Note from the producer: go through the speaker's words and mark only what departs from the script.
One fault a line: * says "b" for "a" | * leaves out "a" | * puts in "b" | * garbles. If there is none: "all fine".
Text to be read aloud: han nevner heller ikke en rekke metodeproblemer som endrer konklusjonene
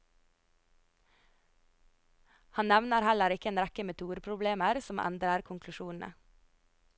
all fine